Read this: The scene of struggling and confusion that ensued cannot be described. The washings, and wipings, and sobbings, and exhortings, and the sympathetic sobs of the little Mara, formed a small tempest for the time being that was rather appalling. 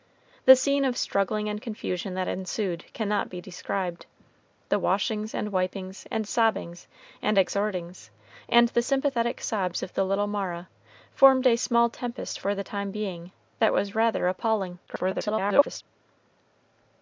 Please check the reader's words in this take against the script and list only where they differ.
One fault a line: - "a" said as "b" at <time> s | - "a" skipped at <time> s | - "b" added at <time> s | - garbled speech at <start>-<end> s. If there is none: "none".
- garbled speech at 14.9-15.8 s